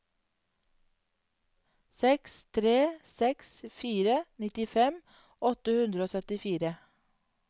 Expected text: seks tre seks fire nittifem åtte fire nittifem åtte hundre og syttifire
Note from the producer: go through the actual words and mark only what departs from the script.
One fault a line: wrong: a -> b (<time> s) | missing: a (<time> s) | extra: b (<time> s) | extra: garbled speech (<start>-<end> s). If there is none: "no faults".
missing: fire nittifem åtte (5.8 s)